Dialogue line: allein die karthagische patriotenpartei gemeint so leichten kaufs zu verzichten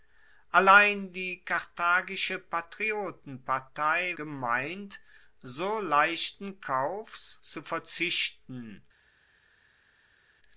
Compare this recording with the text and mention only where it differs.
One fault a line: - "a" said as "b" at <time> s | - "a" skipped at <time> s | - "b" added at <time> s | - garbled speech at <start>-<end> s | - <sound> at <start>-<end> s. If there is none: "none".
none